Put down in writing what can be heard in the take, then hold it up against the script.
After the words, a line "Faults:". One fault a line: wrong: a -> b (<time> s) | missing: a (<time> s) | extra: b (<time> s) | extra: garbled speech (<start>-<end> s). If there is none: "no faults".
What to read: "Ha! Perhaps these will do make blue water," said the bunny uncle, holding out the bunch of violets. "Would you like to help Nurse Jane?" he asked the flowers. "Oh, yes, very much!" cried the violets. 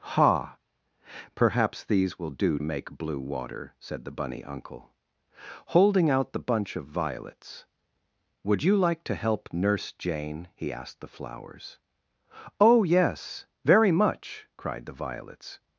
"Ha! Perhaps these will do make blue water," said the bunny uncle, holding out the bunch of violets. "Would you like to help Nurse Jane?" he asked the flowers. "Oh, yes, very much!" cried the violets.
Faults:
no faults